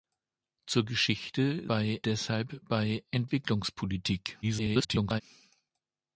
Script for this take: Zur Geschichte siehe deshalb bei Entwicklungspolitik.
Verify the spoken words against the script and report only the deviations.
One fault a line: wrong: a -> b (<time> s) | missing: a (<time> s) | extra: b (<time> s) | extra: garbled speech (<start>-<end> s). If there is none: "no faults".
wrong: siehe -> bei (1.7 s)
extra: garbled speech (4.4-5.2 s)